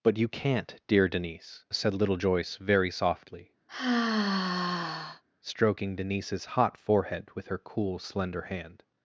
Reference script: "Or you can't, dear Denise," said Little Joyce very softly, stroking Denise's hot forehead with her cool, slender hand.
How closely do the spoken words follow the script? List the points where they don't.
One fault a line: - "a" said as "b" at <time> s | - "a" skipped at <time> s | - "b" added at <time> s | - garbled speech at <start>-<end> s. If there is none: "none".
- "Or" said as "But" at 0.0 s